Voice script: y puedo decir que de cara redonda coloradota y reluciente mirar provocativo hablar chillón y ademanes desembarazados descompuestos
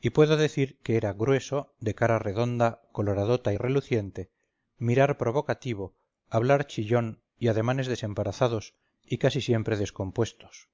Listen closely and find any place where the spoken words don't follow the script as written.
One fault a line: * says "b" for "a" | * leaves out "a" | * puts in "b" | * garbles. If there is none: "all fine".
* puts in "era grueso"
* puts in "y casi siempre"